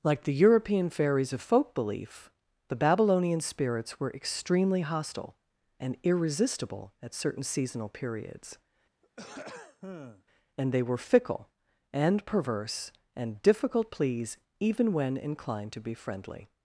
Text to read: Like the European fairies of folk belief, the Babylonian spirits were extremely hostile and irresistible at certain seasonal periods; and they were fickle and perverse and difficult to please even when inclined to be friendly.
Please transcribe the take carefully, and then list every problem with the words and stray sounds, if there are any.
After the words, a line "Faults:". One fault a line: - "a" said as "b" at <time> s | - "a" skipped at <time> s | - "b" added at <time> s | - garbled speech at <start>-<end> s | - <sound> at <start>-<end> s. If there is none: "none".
Like the European fairies of folk belief, the Babylonian spirits were extremely hostile and irresistible at certain seasonal periods; and they were fickle and perverse and difficult please even when inclined to be friendly.
Faults:
- throat clearing at 9.0-10.2 s
- "to" skipped at 13.9 s